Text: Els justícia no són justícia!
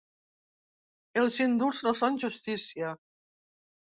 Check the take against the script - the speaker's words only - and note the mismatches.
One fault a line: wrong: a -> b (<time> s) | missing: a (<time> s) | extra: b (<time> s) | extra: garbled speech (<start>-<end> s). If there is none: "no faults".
wrong: justícia -> indults (1.4 s)